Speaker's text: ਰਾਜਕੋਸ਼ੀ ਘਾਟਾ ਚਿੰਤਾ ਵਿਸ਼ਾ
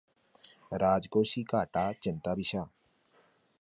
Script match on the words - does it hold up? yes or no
yes